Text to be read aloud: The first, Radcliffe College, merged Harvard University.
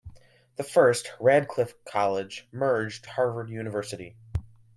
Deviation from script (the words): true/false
false